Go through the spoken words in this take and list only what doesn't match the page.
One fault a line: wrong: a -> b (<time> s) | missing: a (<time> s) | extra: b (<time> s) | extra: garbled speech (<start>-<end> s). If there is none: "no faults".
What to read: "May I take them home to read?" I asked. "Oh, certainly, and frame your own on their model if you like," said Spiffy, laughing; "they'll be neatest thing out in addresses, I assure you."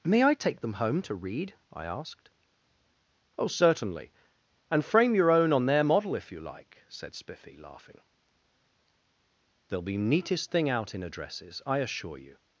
no faults